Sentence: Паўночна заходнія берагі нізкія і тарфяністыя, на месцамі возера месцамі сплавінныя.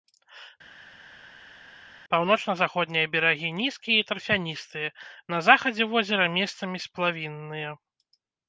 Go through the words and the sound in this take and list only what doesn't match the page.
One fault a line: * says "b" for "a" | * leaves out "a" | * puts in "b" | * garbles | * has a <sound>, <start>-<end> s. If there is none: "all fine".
* says "захадзе" for "месцамі"